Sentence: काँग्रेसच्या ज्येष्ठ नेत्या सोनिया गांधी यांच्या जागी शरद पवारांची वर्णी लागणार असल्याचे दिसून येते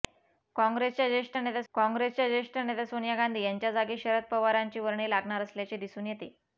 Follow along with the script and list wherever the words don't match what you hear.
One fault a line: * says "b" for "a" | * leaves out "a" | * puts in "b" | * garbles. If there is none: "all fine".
* puts in "काँग्रेसच्या ज्येष्ठ नेत्या"